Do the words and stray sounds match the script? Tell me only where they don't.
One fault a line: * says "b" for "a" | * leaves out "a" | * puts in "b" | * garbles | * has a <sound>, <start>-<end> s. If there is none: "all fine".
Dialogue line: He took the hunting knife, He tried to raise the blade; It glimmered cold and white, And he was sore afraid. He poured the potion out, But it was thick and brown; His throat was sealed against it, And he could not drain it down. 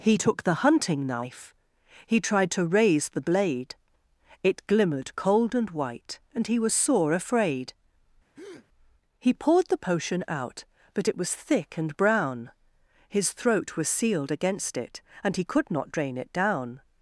* has a breath, 8.3-8.7 s